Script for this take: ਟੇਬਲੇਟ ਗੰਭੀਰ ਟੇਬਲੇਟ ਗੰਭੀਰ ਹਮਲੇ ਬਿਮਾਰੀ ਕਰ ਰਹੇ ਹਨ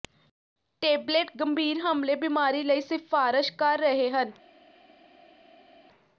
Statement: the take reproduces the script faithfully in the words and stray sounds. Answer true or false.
false